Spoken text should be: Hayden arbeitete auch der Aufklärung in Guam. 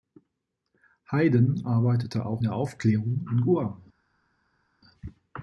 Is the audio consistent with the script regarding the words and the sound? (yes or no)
yes